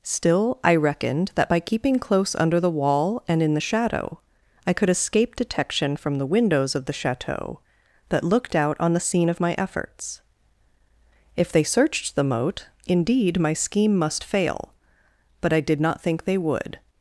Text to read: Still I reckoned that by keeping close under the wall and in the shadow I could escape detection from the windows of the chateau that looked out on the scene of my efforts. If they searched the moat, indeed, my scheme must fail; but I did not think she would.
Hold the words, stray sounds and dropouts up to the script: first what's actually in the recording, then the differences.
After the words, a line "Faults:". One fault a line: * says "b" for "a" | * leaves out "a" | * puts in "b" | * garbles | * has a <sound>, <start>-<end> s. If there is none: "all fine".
Still I reckoned that by keeping close under the wall and in the shadow I could escape detection from the windows of the chateau that looked out on the scene of my efforts. If they searched the moat, indeed, my scheme must fail; but I did not think they would.
Faults:
* says "they" for "she"